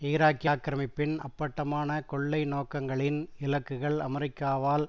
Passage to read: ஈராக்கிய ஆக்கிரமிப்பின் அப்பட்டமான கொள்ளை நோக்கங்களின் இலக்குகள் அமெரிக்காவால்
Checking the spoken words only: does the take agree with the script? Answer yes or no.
yes